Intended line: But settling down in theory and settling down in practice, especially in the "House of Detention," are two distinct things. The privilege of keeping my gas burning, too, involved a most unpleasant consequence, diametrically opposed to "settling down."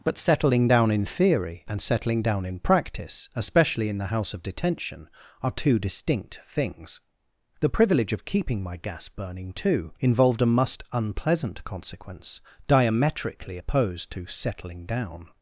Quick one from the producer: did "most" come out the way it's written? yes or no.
no